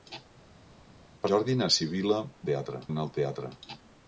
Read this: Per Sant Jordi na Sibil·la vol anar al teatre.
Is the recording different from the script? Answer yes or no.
yes